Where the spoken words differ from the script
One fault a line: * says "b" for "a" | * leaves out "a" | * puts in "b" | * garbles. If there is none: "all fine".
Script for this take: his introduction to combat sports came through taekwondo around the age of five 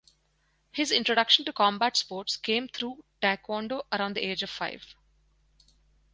all fine